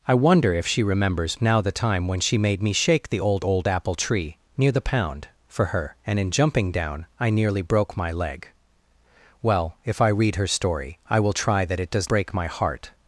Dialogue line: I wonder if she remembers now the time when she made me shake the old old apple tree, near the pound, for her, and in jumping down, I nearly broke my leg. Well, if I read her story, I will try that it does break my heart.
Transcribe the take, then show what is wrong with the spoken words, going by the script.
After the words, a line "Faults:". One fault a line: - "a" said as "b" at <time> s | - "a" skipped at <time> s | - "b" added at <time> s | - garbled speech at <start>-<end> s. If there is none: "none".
I wonder if she remembers now the time when she made me shake the old old apple tree, near the pound, for her, and in jumping down, I nearly broke my leg. Well, if I read her story, I will try that it does break my heart.
Faults:
none